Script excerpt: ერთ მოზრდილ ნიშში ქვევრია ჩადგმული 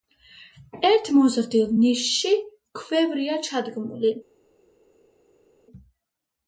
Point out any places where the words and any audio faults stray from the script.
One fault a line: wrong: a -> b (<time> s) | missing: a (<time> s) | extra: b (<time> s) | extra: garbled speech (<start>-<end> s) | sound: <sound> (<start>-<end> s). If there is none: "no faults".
no faults